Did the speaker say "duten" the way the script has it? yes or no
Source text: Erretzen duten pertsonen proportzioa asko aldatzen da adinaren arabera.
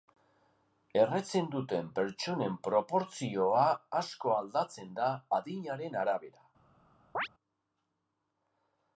yes